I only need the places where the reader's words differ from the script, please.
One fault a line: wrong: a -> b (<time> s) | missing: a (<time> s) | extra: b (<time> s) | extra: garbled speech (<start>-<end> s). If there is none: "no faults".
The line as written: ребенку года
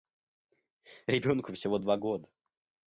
extra: всего два (1.5 s)